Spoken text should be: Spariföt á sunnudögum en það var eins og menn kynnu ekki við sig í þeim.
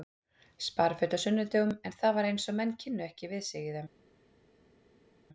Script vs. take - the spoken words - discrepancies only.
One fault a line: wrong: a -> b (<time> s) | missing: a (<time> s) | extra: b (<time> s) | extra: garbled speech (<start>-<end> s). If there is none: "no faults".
no faults